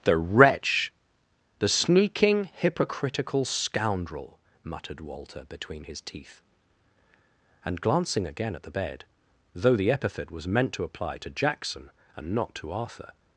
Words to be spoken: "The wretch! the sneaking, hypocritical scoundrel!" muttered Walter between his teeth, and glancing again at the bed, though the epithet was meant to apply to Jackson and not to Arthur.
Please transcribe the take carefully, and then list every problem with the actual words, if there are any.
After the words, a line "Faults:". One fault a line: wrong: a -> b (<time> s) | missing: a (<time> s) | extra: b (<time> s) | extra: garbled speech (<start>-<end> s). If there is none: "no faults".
"The wretch! the sneaking, hypocritical scoundrel!" muttered Walter between his teeth, and glancing again at the bed, though the epithet was meant to apply to Jackson and not to Arthur.
Faults:
no faults